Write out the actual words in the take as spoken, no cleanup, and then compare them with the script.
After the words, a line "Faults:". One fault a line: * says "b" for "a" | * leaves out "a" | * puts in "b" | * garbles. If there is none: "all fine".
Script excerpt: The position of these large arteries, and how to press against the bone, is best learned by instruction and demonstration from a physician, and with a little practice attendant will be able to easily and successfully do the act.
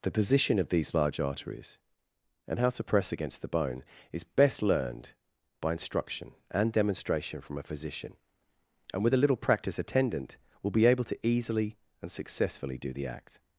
The position of these large arteries, and how to press against the bone, is best learned by instruction and demonstration from a physician, and with a little practice attendant will be able to easily and successfully do the act.
Faults:
all fine